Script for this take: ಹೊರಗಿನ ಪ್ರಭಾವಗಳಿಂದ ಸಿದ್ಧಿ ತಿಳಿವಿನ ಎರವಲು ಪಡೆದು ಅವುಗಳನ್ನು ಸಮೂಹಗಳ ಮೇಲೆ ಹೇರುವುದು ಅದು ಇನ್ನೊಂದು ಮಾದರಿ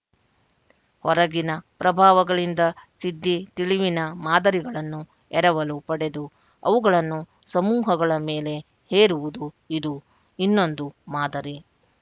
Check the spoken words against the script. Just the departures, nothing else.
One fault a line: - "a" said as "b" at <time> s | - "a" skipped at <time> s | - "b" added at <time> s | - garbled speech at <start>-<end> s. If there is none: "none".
- "ಮಾದರಿಗಳನ್ನು" added at 4.2 s
- "ಅದು" said as "ಇದು" at 9.8 s